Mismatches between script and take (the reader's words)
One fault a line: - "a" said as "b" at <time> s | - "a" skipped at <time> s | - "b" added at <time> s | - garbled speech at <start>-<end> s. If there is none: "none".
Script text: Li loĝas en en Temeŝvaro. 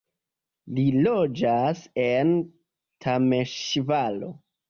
- "en" skipped at 2.3 s